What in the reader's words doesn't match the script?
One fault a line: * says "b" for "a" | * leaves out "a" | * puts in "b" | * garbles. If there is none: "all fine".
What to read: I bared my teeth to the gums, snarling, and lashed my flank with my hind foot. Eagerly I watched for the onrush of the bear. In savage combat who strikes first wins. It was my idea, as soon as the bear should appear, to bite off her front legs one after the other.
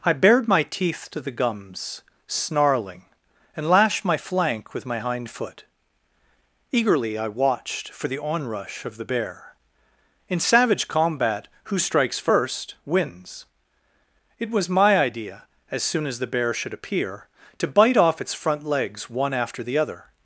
* says "its" for "her"